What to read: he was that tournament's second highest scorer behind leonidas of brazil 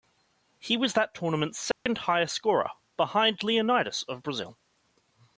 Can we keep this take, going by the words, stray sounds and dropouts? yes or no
no